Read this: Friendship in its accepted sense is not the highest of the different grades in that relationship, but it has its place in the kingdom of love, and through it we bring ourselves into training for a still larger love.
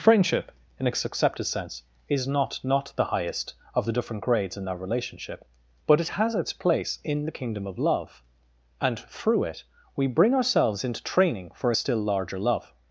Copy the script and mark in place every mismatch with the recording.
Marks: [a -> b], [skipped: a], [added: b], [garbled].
Friendship in its accepted sense is not [added: not] the highest of the different grades in that relationship, but it has its place in the kingdom of love, and through it we bring ourselves into training for a still larger love.